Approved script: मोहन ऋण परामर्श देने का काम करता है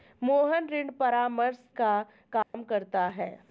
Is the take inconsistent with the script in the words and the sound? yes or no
yes